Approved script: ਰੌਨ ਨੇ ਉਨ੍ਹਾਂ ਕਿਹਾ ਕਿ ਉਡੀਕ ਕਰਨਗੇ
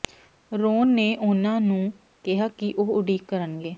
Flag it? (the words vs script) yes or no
yes